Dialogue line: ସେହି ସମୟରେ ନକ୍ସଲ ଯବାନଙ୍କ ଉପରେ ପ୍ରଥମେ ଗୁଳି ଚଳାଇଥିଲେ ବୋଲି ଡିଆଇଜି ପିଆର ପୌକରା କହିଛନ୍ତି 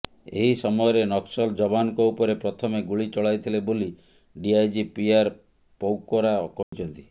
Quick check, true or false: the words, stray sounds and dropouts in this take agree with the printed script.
false